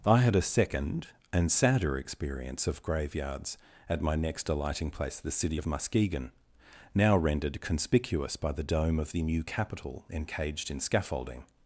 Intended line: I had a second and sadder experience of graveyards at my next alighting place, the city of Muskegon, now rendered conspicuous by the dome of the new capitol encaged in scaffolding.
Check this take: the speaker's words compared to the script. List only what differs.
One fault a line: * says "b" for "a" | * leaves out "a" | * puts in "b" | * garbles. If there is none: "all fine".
all fine